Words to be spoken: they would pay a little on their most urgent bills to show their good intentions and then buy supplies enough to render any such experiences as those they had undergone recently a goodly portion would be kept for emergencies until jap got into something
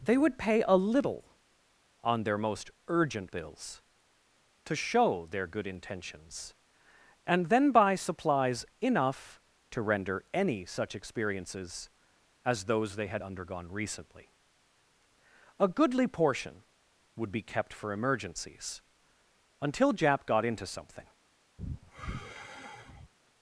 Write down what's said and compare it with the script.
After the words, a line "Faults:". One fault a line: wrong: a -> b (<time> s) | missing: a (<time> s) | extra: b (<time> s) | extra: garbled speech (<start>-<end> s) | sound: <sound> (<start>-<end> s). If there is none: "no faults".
they would pay a little on their most urgent bills to show their good intentions and then buy supplies enough to render any such experiences as those they had undergone recently a goodly portion would be kept for emergencies until jap got into something
Faults:
sound: sigh (21.6-23.1 s)